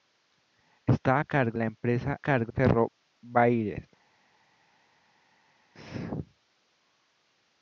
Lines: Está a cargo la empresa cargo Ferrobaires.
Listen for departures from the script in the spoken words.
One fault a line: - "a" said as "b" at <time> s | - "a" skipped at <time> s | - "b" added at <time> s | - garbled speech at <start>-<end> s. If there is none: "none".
none